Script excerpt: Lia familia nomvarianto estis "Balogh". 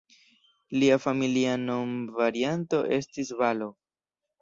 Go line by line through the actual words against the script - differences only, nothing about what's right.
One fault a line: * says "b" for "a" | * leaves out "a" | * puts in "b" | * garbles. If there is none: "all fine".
all fine